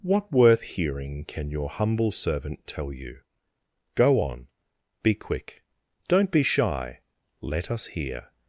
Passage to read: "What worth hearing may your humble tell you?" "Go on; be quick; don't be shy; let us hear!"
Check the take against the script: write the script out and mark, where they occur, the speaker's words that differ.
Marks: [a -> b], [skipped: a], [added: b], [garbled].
"What worth hearing [may -> can] your humble [added: servant] tell you?" "Go on; be quick; don't be shy; let us hear!"